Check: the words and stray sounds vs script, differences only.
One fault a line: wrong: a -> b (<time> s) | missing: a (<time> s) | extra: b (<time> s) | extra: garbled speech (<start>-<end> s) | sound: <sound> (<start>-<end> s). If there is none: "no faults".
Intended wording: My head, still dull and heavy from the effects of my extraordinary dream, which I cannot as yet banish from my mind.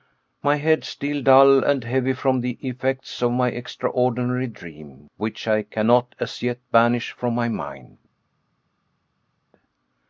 no faults